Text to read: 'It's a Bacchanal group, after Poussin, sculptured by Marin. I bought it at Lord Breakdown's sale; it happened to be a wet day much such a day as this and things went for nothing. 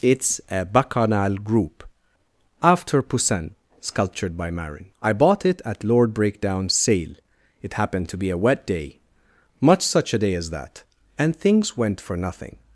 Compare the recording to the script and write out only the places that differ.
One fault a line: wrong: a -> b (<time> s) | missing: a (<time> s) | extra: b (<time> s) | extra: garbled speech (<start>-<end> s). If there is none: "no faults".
wrong: this -> that (10.5 s)